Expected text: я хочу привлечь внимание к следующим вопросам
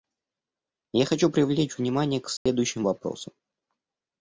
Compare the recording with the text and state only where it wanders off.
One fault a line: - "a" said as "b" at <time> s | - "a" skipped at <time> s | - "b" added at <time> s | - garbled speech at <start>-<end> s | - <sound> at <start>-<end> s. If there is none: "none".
- dropout at 2.4-2.5 s